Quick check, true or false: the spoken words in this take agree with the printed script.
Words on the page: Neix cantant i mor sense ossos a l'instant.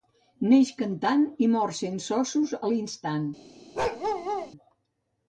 true